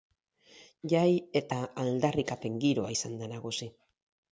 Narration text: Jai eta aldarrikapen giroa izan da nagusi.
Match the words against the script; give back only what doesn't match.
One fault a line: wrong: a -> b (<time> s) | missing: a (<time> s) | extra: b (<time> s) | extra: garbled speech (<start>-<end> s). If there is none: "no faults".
no faults